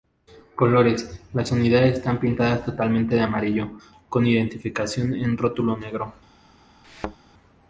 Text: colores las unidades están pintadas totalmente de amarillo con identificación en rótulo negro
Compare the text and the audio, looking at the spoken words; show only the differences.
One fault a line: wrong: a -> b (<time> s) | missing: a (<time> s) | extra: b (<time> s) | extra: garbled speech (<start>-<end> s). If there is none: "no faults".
no faults